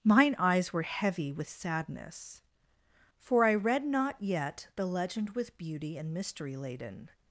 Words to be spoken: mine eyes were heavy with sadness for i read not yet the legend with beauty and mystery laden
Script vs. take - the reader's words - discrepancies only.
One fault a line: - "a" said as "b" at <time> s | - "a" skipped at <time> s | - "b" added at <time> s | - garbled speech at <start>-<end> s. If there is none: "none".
none